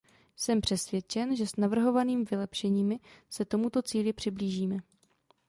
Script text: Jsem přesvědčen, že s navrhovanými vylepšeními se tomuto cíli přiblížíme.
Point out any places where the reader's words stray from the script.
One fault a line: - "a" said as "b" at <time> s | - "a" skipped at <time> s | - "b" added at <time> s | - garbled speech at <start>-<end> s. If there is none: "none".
none